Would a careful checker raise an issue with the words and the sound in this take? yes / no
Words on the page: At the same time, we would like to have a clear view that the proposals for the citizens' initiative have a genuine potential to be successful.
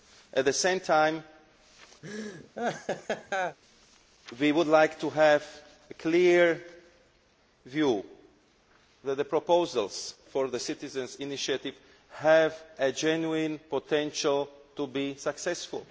yes